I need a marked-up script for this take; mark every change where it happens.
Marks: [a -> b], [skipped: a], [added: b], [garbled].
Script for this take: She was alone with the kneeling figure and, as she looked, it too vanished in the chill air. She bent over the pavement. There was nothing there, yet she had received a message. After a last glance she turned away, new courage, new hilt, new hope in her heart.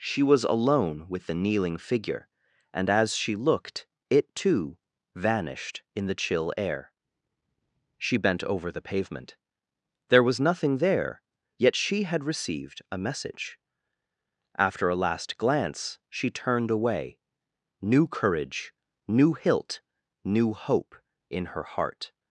She was alone with the kneeling figure and, as she looked, it too vanished in the chill air. She bent over the pavement. There was nothing there, yet she had received a message. After a last glance she turned away, new courage, new hilt, new hope in her heart.